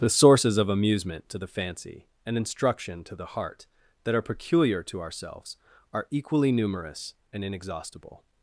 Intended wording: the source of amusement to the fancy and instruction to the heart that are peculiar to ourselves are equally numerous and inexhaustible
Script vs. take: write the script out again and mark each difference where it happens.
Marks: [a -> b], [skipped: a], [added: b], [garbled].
the [source -> sources] of amusement to the fancy and instruction to the heart that are peculiar to ourselves are equally numerous and inexhaustible